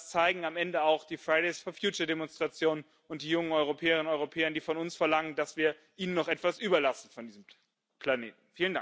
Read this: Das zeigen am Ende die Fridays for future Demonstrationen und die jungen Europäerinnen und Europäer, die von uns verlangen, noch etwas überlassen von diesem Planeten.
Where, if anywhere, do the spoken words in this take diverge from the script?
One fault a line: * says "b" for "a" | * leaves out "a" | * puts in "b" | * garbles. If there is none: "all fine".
* puts in "auch"
* puts in "dass wir ihnen"